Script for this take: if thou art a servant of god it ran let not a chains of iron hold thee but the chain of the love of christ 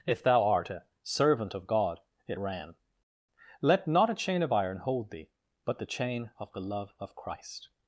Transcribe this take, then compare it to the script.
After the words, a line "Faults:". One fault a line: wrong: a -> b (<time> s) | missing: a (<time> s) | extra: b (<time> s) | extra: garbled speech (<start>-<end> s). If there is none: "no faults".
if thou art a servant of god it ran let not a chain of iron hold thee but the chain of the love of christ
Faults:
wrong: chains -> chain (4.1 s)